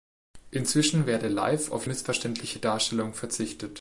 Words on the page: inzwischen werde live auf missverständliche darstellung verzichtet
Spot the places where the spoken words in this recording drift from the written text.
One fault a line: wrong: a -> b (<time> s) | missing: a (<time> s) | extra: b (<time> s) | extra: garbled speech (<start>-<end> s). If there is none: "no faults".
no faults